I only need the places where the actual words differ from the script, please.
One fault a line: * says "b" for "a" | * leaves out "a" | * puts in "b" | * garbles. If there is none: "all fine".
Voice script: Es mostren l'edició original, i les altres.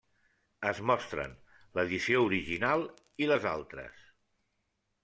all fine